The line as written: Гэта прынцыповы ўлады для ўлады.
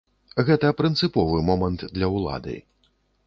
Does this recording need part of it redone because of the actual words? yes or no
yes